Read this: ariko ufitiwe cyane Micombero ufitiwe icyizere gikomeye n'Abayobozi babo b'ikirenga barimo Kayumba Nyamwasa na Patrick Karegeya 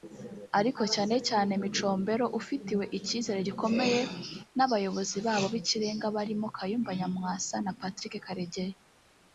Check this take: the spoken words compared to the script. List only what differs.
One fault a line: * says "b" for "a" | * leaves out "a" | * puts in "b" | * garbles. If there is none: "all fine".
* says "cyane" for "ufitiwe"